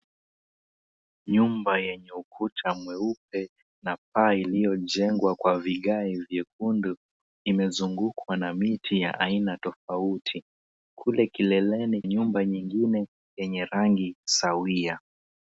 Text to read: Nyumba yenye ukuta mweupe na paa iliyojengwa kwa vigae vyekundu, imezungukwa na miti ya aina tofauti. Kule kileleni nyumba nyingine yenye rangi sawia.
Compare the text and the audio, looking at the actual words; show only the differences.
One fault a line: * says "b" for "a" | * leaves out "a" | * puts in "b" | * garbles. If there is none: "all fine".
all fine